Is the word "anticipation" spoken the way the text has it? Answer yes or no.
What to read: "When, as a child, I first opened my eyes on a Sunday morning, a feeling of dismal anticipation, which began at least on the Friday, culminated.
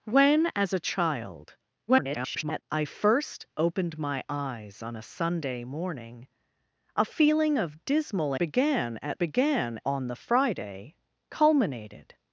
no